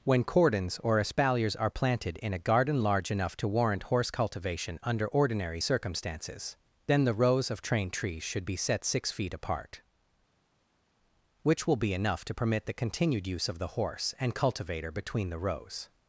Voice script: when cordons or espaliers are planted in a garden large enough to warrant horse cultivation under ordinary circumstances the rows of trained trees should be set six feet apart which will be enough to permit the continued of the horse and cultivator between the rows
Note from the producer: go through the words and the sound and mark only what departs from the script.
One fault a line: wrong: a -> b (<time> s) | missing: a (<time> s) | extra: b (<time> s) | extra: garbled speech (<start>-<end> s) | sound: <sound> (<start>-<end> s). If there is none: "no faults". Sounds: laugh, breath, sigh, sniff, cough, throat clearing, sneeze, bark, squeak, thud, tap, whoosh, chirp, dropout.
extra: then (6.9 s)
extra: use (13.3 s)